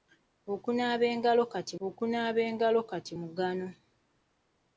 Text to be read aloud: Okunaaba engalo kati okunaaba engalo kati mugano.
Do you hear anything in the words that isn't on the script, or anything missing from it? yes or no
no